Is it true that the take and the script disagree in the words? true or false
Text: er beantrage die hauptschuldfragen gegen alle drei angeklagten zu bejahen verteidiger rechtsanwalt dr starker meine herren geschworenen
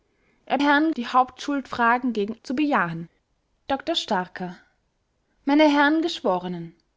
true